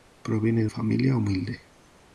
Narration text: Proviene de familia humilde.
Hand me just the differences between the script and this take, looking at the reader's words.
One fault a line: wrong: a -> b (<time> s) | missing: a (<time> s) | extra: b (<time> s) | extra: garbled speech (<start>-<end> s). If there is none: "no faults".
no faults